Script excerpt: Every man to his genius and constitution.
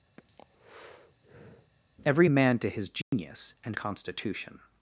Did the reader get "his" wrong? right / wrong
right